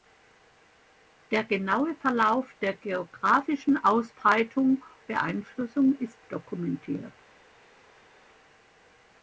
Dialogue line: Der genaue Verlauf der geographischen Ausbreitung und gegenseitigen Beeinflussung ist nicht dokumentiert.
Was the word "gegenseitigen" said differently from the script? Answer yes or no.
yes